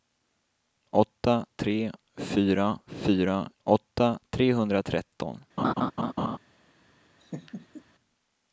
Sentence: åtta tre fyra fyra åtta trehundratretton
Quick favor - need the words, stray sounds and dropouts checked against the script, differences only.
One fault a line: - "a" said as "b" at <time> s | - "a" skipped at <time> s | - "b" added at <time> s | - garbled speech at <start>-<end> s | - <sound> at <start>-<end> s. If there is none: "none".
- laugh at 5.6-6.4 s
- laugh at 7.2-7.8 s